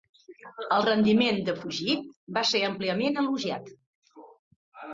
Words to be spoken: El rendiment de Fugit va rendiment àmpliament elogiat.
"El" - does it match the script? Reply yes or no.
yes